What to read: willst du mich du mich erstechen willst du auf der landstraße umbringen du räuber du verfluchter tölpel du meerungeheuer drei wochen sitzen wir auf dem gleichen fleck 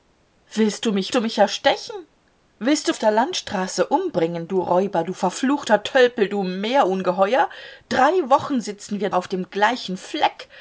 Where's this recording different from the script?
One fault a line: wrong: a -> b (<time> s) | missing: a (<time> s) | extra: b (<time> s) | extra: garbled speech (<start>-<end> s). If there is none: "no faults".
no faults